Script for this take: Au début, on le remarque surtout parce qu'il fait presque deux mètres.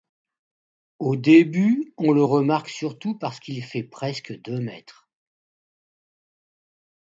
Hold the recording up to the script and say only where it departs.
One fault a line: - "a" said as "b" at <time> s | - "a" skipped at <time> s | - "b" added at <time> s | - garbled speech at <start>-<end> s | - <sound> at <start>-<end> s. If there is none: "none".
none